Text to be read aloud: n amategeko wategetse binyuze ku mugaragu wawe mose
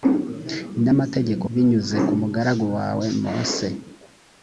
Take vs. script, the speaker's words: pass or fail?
fail